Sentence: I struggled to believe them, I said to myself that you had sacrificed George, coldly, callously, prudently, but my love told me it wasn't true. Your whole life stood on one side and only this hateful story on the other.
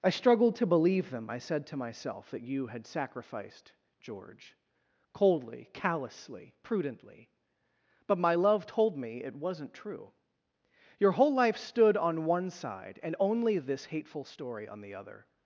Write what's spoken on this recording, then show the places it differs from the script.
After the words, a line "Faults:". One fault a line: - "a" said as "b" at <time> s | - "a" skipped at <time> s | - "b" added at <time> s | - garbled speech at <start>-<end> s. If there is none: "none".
I struggled to believe them, I said to myself that you had sacrificed George, coldly, callously, prudently, but my love told me it wasn't true. Your whole life stood on one side and only this hateful story on the other.
Faults:
none